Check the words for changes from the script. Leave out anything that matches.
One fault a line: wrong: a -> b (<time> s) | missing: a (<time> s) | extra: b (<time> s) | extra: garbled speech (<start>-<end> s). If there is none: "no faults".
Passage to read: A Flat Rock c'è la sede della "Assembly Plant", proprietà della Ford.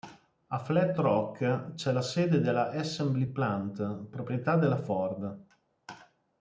no faults